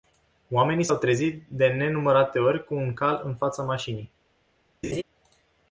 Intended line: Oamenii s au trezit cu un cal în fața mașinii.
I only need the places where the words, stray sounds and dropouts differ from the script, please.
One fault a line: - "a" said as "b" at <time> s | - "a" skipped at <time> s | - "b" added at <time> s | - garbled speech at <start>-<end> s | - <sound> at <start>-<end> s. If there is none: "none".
- "de nenumărate ori" added at 1.5 s
- laugh at 4.8-5.0 s